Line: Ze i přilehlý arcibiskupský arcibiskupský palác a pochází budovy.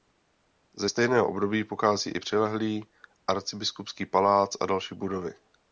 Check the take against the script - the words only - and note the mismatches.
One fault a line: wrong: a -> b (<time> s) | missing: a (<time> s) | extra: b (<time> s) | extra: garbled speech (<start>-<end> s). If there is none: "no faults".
extra: stejného období pochází (0.9 s)
missing: arcibiskupský (4.1 s)
wrong: pochází -> další (4.7 s)